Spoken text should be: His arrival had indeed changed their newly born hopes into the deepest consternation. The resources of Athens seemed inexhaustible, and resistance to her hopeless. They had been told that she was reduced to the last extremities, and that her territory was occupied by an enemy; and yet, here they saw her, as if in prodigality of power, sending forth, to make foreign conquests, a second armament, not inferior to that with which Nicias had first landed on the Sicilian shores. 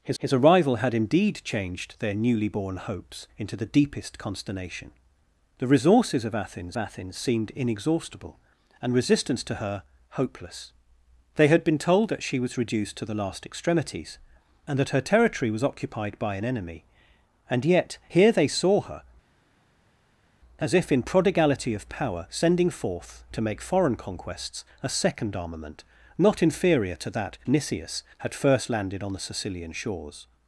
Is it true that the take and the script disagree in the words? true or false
true